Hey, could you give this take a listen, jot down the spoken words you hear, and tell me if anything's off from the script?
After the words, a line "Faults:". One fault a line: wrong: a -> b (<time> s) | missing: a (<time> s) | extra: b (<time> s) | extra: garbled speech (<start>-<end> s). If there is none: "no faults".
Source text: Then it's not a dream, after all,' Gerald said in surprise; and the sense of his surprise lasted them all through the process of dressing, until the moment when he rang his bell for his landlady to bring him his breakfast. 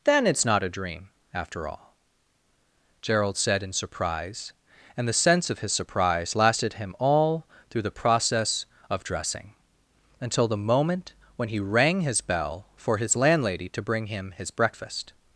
Then it's not a dream, after all,' Gerald said in surprise; and the sense of his surprise lasted him all through the process of dressing, until the moment when he rang his bell for his landlady to bring him his breakfast.
Faults:
wrong: them -> him (6.7 s)